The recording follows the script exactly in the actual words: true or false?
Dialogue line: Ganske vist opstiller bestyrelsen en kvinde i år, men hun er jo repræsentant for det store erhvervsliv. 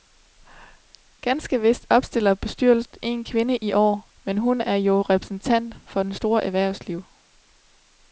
true